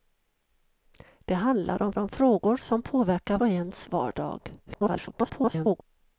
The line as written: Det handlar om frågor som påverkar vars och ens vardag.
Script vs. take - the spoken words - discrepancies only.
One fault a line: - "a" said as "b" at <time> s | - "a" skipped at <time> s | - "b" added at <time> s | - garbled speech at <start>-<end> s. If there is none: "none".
- "om" added at 2.0 s
- "vars" skipped at 3.4 s
- garbled speech at 4.7-5.8 s